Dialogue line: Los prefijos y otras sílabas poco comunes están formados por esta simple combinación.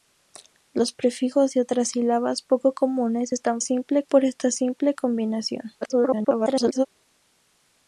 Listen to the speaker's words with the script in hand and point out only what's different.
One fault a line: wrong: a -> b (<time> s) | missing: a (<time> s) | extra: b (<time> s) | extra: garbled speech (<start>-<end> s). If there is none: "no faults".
wrong: formados -> simple (3.6 s)
extra: garbled speech (5.8-6.9 s)